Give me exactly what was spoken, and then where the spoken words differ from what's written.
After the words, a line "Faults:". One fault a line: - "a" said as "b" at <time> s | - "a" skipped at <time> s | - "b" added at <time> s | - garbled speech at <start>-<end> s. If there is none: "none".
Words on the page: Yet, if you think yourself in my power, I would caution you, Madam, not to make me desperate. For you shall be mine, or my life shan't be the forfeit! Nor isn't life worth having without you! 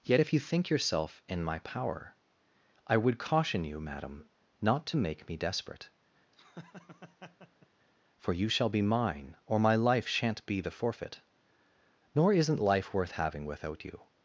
Yet, if you think yourself in my power, I would caution you, Madam, not to make me desperate. For you shall be mine, or my life shan't be the forfeit! Nor isn't life worth having without you!
Faults:
none